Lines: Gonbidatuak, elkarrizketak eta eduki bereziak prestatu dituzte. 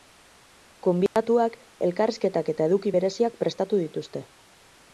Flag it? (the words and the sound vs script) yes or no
yes